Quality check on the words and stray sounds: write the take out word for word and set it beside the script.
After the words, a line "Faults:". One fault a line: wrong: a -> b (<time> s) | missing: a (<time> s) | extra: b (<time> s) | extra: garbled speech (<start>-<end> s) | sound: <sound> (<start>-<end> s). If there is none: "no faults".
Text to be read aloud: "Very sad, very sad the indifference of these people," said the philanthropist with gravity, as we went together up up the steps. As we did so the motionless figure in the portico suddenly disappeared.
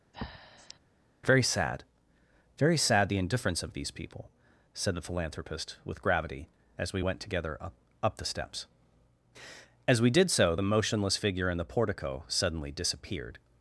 "Very sad, very sad the indifference of these people," said the philanthropist with gravity, as we went together up up the steps. As we did so the motionless figure in the portico suddenly disappeared.
Faults:
sound: breath (0.1-0.8 s)